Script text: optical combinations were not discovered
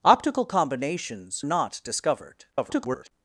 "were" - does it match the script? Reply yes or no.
no